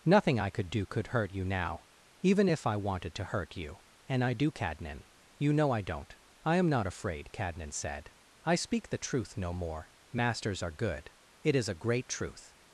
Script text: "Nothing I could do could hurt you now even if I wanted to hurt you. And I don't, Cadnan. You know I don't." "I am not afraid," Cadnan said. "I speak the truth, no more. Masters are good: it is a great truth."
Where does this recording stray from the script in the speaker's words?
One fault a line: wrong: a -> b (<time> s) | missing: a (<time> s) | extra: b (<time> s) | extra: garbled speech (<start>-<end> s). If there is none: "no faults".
wrong: don't -> do (4.3 s)